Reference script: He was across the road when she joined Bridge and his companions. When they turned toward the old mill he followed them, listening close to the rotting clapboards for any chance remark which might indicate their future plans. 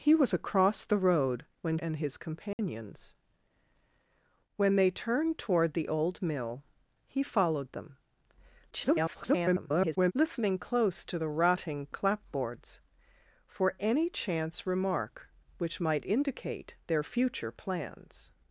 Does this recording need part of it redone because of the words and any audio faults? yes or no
yes